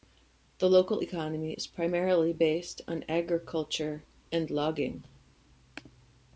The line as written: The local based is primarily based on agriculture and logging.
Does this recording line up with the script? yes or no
no